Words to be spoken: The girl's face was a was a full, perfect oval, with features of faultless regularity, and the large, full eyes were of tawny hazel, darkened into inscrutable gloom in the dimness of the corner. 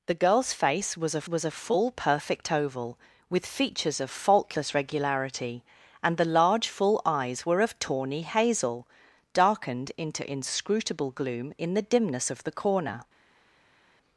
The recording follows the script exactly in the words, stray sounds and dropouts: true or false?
true